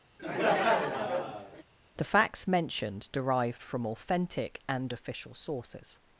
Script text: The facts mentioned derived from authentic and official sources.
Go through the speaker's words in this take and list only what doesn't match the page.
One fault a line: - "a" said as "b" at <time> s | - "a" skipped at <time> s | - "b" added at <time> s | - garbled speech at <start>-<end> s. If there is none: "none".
none